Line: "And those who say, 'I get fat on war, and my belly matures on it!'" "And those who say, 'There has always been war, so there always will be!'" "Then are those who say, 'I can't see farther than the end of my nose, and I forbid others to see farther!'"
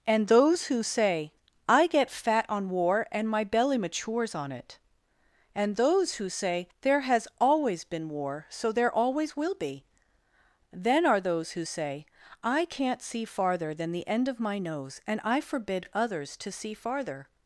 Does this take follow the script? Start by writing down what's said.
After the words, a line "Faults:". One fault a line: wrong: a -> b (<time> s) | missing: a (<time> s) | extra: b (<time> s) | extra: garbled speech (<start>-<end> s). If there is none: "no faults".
"And those who say, 'I get fat on war, and my belly matures on it!'" "And those who say, 'There has always been war, so there always will be!'" "Then are those who say, 'I can't see farther than the end of my nose, and I forbid others to see farther!'"
Faults:
no faults